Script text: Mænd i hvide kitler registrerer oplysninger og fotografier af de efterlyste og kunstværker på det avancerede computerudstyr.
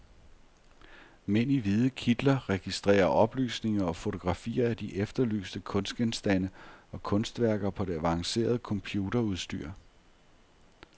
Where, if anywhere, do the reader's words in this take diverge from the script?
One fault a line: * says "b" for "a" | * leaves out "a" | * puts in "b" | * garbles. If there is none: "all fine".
* puts in "kunstgenstande"